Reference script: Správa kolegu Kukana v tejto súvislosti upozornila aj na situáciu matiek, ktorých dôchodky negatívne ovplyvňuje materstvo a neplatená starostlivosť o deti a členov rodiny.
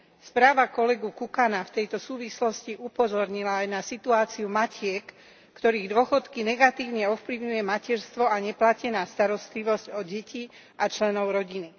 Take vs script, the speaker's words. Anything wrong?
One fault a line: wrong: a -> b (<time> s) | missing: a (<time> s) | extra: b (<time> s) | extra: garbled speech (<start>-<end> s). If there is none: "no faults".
no faults